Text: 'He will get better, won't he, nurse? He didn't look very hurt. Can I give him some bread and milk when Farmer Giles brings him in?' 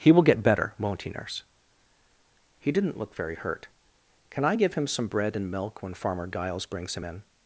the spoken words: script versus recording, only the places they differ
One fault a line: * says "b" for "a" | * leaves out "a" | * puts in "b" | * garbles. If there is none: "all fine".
all fine